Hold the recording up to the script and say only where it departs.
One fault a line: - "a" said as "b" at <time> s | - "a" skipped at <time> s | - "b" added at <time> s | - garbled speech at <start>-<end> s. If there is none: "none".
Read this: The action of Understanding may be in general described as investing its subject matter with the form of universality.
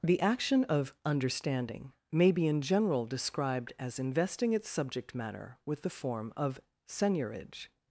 - "universality" said as "seigniorage" at 6.9 s